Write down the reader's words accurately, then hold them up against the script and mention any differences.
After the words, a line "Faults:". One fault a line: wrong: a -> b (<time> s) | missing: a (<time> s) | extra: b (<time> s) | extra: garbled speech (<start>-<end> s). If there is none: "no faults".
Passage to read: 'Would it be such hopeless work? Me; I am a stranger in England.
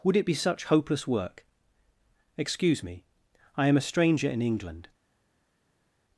'Would it be such hopeless work? Excuse me; I am a stranger in England.
Faults:
extra: Excuse (2.4 s)